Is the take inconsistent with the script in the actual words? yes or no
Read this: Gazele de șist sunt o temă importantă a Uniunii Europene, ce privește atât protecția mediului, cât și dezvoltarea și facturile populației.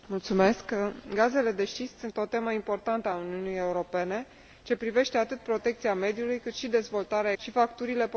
no